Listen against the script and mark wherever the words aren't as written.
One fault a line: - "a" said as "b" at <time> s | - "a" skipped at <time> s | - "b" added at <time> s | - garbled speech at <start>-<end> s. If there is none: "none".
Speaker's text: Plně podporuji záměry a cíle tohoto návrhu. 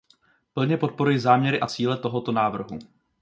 none